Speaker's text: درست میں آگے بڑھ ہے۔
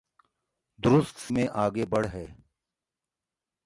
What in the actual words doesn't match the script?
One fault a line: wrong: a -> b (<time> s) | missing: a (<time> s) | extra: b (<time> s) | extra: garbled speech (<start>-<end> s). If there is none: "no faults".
no faults